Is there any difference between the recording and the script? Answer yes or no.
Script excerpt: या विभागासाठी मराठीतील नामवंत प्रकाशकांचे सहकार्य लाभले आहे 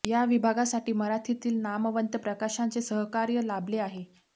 no